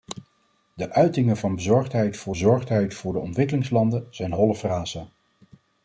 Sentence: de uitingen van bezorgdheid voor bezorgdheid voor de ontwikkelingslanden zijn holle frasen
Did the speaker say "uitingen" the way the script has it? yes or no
yes